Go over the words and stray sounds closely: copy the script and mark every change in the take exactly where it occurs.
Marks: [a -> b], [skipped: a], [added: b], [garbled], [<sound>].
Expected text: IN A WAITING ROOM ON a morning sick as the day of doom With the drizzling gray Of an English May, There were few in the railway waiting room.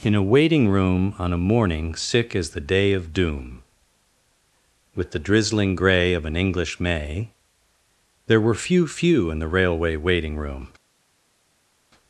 IN A WAITING ROOM ON a morning sick as the day of doom With the drizzling gray Of an English May, There were few [added: few] in the railway waiting room.